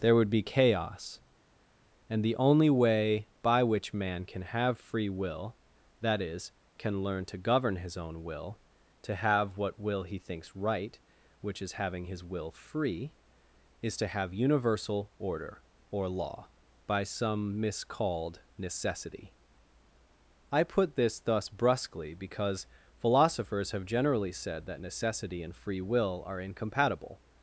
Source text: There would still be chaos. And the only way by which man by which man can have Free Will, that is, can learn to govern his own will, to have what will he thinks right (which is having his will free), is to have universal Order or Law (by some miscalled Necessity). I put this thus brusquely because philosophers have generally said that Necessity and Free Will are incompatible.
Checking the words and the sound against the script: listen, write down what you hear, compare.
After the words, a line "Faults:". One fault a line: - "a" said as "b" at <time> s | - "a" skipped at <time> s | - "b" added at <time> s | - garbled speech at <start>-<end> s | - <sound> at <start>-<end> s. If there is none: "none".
There would be chaos. And the only way by which man can have Free Will, that is, can learn to govern his own will, to have what will he thinks right (which is having his will free), is to have universal Order or Law (by some miscalled Necessity). I put this thus brusquely because philosophers have generally said that Necessity and Free Will are incompatible.
Faults:
- "still" skipped at 0.3 s
- "by which man" skipped at 4.3 s